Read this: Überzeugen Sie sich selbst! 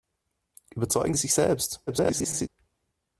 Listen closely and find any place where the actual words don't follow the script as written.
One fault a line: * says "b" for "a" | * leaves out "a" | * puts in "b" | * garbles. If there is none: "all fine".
* leaves out "Sie"
* garbles